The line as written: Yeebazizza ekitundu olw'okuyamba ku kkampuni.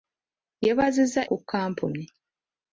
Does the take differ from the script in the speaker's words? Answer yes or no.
yes